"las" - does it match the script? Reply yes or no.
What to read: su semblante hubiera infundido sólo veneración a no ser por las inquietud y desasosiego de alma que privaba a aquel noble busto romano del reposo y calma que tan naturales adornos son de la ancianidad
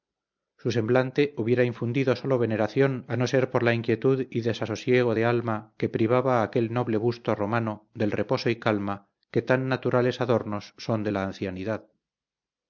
no